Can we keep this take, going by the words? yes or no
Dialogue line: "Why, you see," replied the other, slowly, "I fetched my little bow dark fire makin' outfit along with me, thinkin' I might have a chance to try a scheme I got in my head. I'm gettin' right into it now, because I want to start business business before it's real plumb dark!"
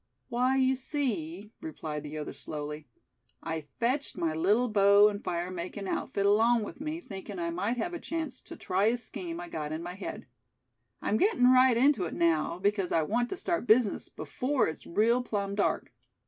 no